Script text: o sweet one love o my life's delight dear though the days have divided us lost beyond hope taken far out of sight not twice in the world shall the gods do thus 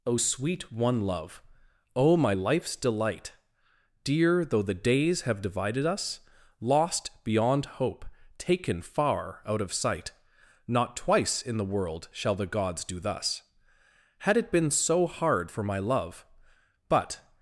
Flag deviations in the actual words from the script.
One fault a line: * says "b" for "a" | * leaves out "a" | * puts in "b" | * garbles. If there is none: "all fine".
* puts in "had it been so hard for my love but"